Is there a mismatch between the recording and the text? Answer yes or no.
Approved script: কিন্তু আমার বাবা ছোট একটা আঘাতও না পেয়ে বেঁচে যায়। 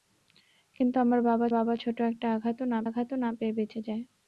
yes